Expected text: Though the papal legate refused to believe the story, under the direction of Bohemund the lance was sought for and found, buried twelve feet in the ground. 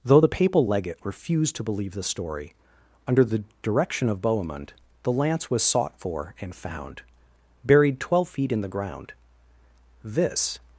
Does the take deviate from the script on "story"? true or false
false